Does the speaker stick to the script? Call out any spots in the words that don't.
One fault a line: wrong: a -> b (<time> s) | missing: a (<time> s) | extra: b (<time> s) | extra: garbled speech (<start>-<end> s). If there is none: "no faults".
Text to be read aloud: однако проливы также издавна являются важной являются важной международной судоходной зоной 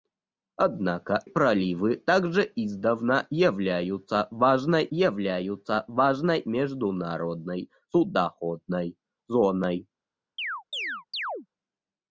no faults